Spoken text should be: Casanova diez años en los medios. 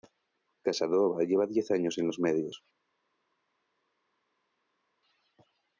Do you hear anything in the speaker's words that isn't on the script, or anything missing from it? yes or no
yes